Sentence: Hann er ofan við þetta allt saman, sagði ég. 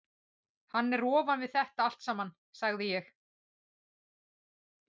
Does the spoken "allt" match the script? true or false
true